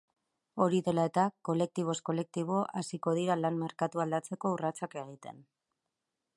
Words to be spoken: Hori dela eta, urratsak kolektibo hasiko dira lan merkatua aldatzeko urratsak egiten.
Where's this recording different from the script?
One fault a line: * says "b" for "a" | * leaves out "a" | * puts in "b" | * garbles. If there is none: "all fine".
* says "kolektiboz" for "urratsak"